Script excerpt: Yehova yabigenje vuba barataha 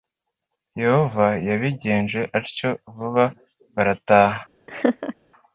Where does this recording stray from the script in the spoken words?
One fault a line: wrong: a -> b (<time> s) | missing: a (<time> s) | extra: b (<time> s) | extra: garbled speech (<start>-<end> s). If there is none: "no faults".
extra: atyo (2.4 s)